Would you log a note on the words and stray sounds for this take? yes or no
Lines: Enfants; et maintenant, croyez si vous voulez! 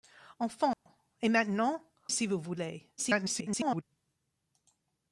yes